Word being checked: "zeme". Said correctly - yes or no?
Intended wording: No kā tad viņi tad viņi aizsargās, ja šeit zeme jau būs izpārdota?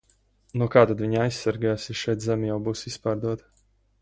yes